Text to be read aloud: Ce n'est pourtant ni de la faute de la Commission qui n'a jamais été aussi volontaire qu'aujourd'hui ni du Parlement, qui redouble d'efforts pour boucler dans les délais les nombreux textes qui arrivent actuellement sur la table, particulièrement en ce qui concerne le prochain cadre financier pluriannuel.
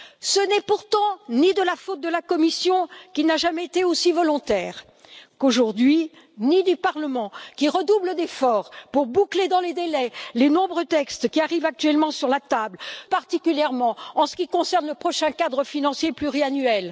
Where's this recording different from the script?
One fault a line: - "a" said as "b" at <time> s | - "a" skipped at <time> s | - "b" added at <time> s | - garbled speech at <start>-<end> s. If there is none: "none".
none